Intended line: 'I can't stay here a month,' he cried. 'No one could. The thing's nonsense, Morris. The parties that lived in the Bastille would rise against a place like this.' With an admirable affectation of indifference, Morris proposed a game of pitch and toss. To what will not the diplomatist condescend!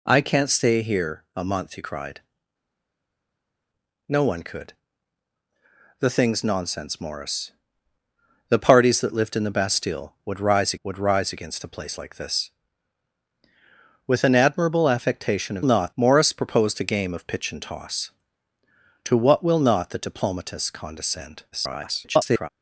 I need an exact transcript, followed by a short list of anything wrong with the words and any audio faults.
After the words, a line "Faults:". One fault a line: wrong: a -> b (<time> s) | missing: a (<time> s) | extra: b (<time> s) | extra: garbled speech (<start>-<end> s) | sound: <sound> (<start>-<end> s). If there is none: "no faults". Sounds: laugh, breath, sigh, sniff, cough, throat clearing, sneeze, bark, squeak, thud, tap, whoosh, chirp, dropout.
'I can't stay here a month,' he cried. 'No one could. The thing's nonsense, Morris. The parties that lived in the Bastille would rise would rise against a place like this.' With an admirable affectation of not, Morris proposed a game of pitch and toss. To what will not the diplomatist condescend! [garbled]
Faults:
extra: would rise (10.8 s)
wrong: indifference -> not (15.6 s)
extra: garbled speech (21.5-22.5 s)